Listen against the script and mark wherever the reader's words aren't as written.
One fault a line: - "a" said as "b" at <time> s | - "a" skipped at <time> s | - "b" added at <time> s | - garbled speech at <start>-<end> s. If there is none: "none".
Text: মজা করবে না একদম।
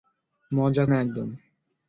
- "করবে" skipped at 0.9 s